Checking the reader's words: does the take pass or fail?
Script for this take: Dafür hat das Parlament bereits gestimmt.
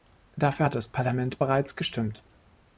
pass